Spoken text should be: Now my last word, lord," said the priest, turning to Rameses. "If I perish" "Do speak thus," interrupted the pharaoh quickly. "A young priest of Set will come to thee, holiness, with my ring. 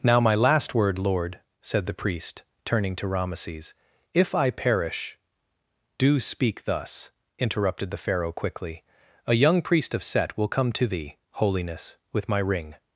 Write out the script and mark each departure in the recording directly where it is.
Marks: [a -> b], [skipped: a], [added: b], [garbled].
Now my last word, lord," said the priest, turning to Rameses. "If I perish" "Do speak thus," interrupted the pharaoh quickly. "A young priest of Set will come to thee, holiness, with my ring.